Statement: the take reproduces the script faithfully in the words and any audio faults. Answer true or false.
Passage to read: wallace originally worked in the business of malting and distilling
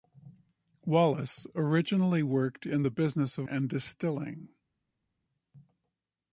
false